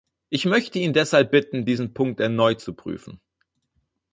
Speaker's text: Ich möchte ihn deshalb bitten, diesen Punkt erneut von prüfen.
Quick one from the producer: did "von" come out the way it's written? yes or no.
no